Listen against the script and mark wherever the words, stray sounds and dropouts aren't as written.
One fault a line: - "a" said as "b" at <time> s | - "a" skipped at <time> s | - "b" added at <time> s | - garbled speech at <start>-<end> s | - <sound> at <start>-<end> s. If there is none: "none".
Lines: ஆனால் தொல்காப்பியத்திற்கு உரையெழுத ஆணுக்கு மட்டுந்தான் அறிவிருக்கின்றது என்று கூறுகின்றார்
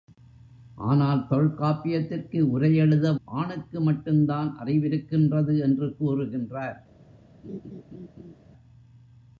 - laugh at 7.4-8.4 s